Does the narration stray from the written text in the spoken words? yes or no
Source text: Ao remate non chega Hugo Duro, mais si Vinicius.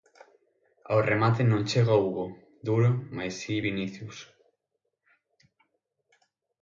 no